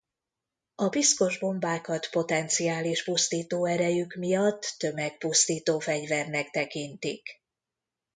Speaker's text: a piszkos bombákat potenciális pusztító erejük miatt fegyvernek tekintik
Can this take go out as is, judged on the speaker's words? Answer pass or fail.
fail